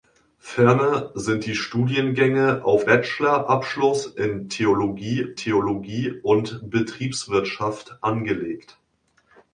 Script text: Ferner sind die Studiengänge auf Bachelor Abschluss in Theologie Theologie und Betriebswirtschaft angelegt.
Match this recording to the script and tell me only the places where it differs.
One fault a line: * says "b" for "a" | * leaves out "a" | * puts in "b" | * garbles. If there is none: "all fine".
all fine